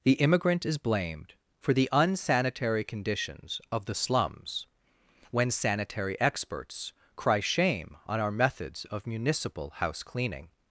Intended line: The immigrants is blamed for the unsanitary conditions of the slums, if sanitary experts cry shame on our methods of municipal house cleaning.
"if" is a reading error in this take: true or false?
true